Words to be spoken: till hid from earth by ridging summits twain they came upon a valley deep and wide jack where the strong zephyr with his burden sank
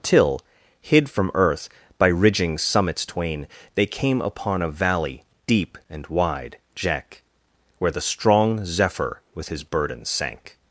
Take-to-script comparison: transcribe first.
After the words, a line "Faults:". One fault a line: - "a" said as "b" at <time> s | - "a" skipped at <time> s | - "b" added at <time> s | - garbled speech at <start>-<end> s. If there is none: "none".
till hid from earth by ridging summits twain they came upon a valley deep and wide jack where the strong zephyr with his burden sank
Faults:
none